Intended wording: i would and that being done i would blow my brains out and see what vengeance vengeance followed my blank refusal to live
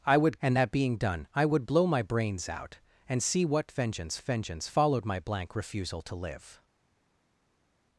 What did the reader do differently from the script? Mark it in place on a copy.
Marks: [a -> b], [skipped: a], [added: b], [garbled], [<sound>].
i would and that being done i would blow my brains out and see what vengeance vengeance followed my blank refusal to live